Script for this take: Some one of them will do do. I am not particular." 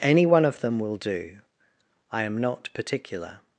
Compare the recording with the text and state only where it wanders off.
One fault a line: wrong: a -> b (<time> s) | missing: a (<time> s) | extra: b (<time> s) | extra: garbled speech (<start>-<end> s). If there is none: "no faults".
wrong: Some -> Any (0.0 s)
missing: do (1.4 s)